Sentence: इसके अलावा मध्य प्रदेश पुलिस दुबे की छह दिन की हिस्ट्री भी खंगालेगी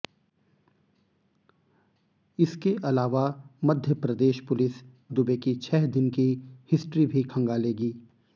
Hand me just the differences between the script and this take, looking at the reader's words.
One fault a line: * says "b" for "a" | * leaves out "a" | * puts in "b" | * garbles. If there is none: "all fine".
all fine